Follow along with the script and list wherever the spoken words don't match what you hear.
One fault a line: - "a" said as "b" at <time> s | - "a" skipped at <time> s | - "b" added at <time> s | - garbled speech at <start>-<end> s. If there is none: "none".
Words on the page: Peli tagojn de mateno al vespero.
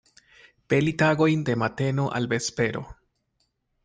none